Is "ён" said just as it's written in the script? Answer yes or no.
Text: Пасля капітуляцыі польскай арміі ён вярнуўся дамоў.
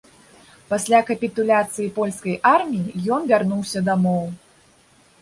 yes